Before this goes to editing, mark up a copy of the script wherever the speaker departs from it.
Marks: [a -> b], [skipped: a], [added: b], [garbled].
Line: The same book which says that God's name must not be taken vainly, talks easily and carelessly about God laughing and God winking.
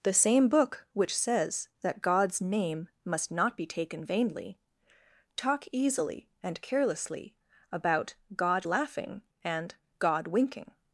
The same book which says that God's name must not be taken vainly, [talks -> talk] easily and carelessly about God laughing and God winking.